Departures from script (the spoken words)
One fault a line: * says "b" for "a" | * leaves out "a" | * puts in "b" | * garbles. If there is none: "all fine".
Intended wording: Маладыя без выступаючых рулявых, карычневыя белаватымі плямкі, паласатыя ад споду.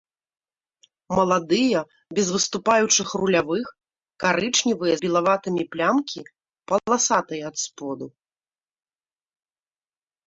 all fine